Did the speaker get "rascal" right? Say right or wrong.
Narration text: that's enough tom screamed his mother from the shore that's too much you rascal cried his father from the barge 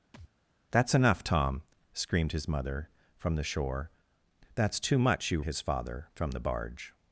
wrong